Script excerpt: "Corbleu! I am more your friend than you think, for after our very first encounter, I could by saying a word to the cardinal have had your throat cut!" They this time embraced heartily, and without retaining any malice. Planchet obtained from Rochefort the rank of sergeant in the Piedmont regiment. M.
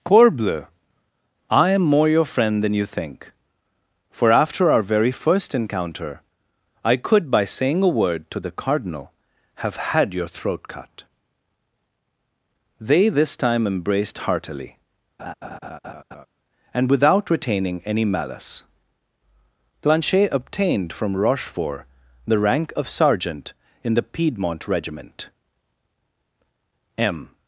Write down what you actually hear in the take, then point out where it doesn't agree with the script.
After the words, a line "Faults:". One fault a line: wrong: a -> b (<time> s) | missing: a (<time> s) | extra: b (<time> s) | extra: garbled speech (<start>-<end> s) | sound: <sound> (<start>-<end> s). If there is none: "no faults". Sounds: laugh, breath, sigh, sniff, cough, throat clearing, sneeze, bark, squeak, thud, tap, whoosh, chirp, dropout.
"Corbleu! I am more your friend than you think, for after our very first encounter, I could by saying a word to the cardinal have had your throat cut!" They this time embraced heartily, and without retaining any malice. Planchet obtained from Rochefort the rank of sergeant in the Piedmont regiment. M.
Faults:
sound: laugh (15.2-16.3 s)